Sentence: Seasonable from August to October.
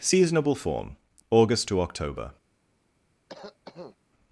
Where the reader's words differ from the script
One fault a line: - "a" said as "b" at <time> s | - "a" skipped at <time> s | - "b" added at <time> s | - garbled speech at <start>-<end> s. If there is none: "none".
- "from" said as "form" at 0.5 s